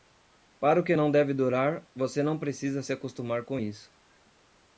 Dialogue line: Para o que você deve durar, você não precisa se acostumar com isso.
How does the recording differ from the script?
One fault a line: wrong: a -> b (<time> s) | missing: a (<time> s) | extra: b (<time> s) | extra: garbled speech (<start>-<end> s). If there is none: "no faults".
wrong: você -> não (0.9 s)